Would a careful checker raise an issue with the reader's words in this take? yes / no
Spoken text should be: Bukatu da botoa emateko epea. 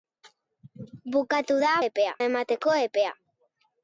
yes